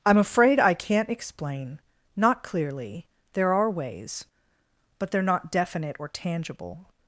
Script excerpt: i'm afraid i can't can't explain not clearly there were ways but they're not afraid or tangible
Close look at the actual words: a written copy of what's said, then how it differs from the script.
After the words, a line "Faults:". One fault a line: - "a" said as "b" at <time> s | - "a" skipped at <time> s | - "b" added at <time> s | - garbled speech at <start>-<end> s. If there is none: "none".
i'm afraid i can't explain not clearly there are ways but they're not definite or tangible
Faults:
- "can't" skipped at 1.1 s
- "were" said as "are" at 3.5 s
- "afraid" said as "definite" at 5.5 s